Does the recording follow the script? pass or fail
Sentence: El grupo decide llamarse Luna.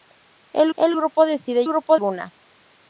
fail